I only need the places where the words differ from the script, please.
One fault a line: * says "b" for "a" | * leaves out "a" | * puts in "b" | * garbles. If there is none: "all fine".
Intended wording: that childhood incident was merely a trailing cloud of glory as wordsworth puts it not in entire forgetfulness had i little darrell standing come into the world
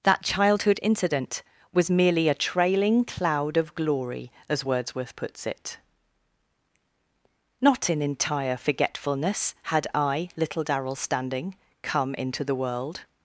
all fine